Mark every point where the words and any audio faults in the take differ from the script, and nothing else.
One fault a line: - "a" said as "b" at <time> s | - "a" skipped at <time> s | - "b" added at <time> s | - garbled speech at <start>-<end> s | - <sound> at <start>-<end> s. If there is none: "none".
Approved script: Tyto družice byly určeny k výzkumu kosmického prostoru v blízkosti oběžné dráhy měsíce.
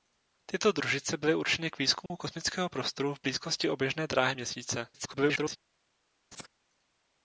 - dropout at 2.1-2.1 s
- garbled speech at 4.9-5.6 s
- laugh at 6.3-6.5 s